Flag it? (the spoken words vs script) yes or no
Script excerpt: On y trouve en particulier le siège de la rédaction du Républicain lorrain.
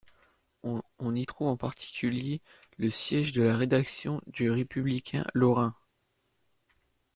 no